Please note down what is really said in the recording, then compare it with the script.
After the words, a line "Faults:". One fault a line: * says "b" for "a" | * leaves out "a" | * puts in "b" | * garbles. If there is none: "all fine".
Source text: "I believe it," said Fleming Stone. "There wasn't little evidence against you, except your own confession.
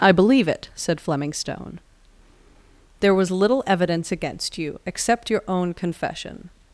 "I believe it," said Fleming Stone. "There was little evidence against you, except your own confession.
Faults:
* says "was" for "wasn't"